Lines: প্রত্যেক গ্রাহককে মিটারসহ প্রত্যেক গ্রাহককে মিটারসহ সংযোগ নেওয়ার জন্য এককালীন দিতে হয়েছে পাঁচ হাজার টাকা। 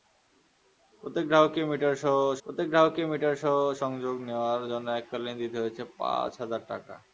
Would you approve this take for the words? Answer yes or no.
yes